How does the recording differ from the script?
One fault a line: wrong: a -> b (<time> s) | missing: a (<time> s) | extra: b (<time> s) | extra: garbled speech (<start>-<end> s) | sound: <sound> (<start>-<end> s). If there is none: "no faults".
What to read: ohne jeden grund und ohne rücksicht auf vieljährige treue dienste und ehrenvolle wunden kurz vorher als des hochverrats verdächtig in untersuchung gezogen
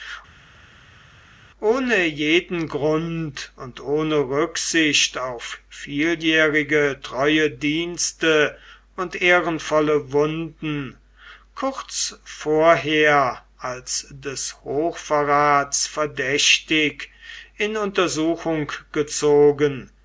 no faults